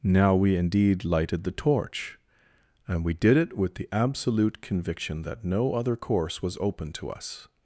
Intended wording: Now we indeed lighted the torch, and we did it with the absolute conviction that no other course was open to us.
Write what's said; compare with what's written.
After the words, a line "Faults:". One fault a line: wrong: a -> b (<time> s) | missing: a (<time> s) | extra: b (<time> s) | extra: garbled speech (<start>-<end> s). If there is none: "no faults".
Now we indeed lighted the torch, and we did it with the absolute conviction that no other course was open to us.
Faults:
no faults